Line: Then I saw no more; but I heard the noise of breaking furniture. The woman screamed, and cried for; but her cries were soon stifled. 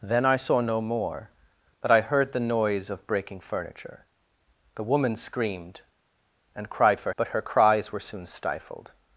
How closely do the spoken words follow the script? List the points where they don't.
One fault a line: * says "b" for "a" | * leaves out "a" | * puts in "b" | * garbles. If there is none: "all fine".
all fine